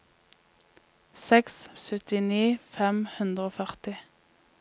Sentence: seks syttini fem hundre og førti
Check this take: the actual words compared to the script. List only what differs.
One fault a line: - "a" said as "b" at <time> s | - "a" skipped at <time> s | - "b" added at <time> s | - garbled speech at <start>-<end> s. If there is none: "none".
none